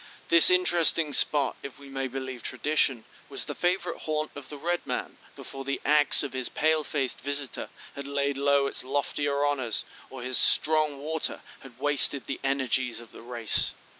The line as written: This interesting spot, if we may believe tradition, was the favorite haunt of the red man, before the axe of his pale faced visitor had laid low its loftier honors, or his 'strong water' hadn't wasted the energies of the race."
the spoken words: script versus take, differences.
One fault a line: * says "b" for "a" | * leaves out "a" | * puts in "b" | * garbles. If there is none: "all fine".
* says "had" for "hadn't"